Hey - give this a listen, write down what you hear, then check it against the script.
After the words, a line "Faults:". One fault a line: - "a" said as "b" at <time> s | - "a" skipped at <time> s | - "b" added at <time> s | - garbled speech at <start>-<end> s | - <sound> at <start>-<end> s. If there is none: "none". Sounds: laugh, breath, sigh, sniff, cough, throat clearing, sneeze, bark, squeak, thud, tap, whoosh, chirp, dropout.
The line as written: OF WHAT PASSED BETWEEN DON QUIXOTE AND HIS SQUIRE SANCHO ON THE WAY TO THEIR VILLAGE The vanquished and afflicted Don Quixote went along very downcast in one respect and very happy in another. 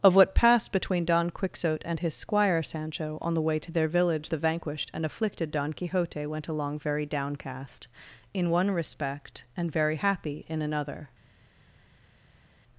OF WHAT PASSED BETWEEN DON QUIXOTE AND HIS SQUIRE SANCHO ON THE WAY TO THEIR VILLAGE The vanquished and afflicted Don Quixote went along very downcast in one respect and very happy in another.
Faults:
none